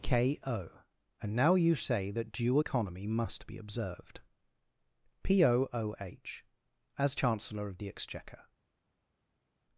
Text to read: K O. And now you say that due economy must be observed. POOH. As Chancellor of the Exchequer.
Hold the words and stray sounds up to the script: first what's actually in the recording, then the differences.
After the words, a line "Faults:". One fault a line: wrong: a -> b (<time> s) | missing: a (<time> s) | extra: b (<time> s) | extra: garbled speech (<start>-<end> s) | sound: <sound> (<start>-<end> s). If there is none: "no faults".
K O. And now you say that due economy must be observed. POOH. As Chancellor of the Exchequer.
Faults:
no faults